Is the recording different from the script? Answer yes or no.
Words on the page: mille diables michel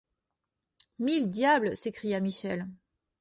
yes